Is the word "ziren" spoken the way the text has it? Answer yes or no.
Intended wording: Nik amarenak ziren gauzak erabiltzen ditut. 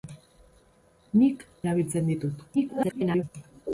no